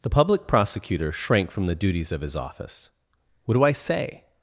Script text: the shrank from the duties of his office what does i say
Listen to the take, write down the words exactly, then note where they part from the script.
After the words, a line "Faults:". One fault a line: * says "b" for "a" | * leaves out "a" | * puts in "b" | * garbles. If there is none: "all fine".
the public prosecutor shrank from the duties of his office what do i say
Faults:
* puts in "public prosecutor"
* says "do" for "does"